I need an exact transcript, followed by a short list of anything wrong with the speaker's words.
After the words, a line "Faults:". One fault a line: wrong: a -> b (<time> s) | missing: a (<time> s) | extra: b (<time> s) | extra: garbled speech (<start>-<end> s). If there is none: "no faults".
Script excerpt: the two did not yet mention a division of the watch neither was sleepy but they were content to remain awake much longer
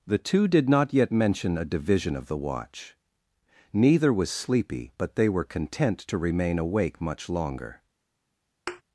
the two did not yet mention a division of the watch neither was sleepy but they were content to remain awake much longer
Faults:
no faults